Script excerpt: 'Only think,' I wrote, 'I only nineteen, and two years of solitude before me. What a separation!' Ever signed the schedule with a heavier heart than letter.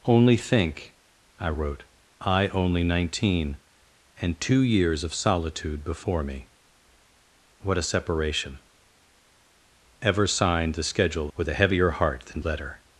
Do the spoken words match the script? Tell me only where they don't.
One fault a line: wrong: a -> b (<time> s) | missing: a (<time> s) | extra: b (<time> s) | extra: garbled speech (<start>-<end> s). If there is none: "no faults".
no faults